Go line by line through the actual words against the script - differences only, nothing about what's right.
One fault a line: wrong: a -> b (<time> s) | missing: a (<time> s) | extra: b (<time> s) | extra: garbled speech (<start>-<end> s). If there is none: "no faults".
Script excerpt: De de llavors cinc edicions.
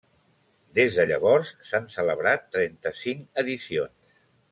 wrong: De -> Des (0.8 s)
extra: s'han celebrat trenta (1.7 s)